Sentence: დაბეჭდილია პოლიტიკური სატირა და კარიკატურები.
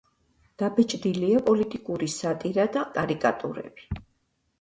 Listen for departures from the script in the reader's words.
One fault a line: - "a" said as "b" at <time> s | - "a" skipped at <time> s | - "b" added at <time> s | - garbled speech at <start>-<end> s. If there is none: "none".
none